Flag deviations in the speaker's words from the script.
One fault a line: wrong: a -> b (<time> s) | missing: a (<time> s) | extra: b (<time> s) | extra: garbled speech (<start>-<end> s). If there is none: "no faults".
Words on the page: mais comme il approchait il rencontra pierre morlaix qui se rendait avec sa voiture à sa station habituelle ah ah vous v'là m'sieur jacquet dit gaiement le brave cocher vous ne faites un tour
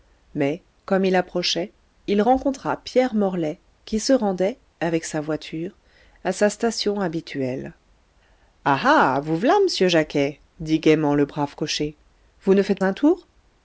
no faults